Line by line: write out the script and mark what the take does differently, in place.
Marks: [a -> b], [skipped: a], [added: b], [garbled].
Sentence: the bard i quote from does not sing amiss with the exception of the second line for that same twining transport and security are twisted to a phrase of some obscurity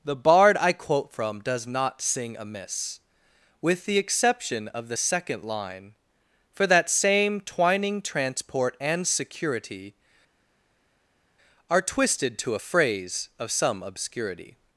the bard i quote from does not sing amiss with the exception of the second line for that same twining transport and security are twisted to a phrase of some obscurity